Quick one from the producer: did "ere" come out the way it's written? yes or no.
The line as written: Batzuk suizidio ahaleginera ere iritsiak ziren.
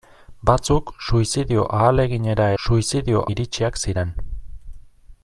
no